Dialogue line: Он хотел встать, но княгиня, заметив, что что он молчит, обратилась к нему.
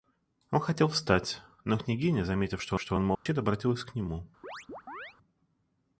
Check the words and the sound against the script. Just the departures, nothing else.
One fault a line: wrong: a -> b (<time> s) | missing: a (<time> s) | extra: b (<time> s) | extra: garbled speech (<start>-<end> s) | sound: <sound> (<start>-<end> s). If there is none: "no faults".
sound: dropout (3.1-3.3 s)
sound: chirp (4.4-5.2 s)